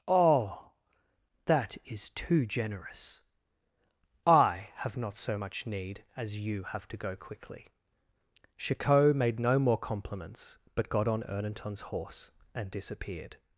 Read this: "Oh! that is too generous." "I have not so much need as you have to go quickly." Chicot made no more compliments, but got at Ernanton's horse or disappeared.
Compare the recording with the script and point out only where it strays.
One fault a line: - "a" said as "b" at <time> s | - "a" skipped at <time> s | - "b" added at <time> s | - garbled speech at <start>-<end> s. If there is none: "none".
- "at" said as "on" at 11.1 s
- "or" said as "and" at 12.5 s